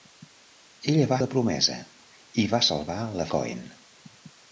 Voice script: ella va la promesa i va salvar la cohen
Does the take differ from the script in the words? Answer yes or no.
no